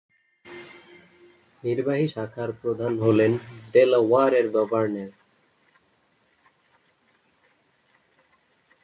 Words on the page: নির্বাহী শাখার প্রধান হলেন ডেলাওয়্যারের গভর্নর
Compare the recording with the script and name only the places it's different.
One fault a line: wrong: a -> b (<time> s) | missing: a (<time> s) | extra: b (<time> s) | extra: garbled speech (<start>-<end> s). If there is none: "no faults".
no faults